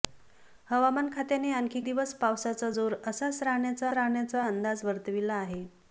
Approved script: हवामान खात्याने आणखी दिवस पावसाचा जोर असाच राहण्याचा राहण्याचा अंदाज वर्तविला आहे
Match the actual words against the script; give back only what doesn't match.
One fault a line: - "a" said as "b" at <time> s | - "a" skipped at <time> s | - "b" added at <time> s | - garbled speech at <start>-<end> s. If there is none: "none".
none